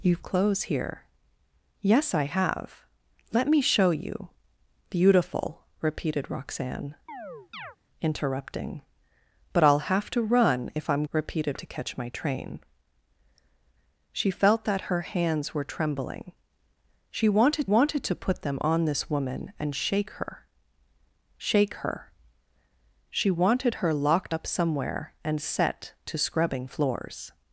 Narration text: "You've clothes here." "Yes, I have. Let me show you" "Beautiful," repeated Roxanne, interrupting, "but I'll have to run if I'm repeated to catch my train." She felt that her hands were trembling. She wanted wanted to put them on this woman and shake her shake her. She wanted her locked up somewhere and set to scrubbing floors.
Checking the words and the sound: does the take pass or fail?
fail